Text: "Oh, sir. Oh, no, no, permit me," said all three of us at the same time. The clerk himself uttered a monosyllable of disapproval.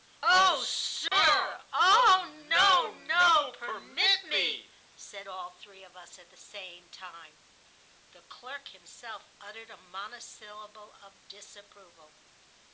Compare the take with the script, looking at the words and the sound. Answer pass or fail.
fail